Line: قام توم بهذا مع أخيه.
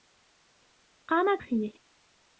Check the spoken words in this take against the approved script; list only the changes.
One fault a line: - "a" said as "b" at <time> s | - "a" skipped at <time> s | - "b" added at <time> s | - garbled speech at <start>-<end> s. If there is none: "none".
- "توم بهذا مع" skipped at 1.4 s